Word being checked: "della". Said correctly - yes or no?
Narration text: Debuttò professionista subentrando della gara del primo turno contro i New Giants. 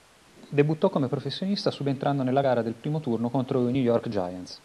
no